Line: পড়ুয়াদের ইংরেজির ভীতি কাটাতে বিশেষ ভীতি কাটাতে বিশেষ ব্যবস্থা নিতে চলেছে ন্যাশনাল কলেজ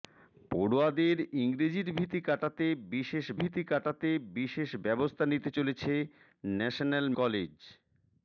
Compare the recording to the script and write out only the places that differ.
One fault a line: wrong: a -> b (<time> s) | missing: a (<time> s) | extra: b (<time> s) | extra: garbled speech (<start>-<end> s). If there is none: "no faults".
no faults